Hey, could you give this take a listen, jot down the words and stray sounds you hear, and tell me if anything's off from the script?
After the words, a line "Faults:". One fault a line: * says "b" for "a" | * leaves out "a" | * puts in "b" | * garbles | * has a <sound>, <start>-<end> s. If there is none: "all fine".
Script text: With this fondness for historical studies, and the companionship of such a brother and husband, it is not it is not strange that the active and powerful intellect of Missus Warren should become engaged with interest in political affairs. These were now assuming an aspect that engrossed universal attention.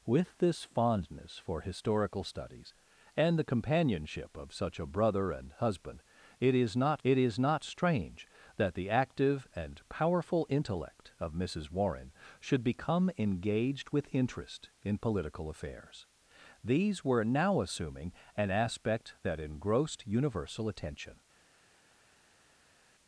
With this fondness for historical studies, and the companionship of such a brother and husband, it is not it is not strange that the active and powerful intellect of Missus Warren should become engaged with interest in political affairs. These were now assuming an aspect that engrossed universal attention.
Faults:
all fine